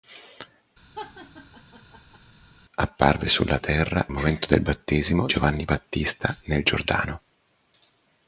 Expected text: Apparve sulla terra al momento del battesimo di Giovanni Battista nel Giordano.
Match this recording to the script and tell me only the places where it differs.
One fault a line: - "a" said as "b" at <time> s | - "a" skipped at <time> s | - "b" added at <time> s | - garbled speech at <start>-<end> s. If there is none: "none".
- "al" skipped at 4.0 s
- "di" skipped at 5.3 s